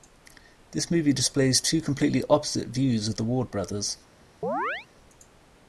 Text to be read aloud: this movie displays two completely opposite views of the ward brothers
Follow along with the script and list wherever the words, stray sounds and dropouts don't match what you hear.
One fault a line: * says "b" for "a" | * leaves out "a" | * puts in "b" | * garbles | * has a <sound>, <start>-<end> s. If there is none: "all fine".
* has a chirp, 4.4-4.9 s